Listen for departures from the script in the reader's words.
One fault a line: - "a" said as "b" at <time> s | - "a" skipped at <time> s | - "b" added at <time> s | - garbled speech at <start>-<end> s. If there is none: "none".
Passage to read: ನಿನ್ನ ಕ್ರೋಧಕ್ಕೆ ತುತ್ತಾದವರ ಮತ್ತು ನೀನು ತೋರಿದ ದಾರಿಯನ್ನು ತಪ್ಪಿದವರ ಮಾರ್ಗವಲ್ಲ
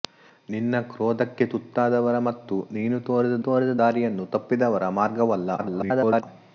- "ತೋರಿದ" added at 3.5 s
- garbled speech at 5.6-6.2 s